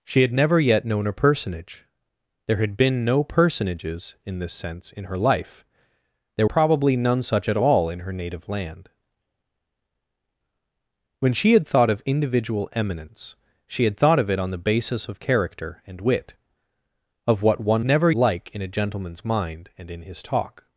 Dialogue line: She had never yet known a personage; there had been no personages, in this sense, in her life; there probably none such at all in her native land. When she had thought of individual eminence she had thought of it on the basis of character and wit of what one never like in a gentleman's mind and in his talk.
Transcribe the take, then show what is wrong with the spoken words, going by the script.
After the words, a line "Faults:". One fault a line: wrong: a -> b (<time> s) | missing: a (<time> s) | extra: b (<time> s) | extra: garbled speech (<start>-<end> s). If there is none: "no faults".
She had never yet known a personage; there had been no personages, in this sense, in her life; there probably none such at all in her native land. When she had thought of individual eminence she had thought of it on the basis of character and wit of what one never like in a gentleman's mind and in his talk.
Faults:
no faults